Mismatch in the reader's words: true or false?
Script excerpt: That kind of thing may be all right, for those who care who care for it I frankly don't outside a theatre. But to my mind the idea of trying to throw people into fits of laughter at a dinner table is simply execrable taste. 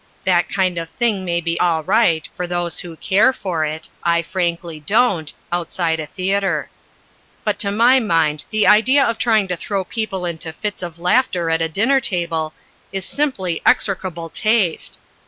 true